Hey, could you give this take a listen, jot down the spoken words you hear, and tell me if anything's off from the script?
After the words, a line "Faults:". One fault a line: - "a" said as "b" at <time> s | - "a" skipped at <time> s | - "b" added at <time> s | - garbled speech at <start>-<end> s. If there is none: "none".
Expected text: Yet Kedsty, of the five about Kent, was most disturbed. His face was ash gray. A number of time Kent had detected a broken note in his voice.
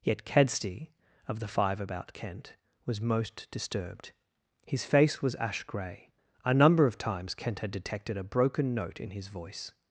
Yet Kedsty, of the five about Kent, was most disturbed. His face was ash gray. A number of times Kent had detected a broken note in his voice.
Faults:
- "time" said as "times" at 7.0 s